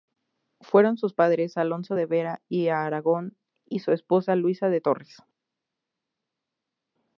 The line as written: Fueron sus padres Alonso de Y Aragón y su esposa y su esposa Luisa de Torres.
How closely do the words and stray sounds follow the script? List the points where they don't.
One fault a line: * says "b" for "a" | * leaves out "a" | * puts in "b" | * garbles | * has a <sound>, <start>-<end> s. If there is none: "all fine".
* puts in "Vera"
* leaves out "y su esposa"